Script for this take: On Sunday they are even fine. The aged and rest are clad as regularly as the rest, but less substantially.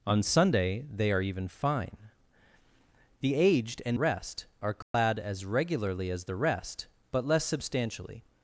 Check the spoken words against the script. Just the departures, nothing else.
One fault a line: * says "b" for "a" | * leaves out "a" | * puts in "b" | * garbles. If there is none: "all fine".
all fine